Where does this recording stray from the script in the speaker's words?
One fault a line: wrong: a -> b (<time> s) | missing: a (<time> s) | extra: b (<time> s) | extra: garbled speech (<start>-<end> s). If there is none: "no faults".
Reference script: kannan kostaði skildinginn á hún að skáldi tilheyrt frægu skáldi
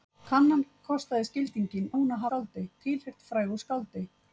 no faults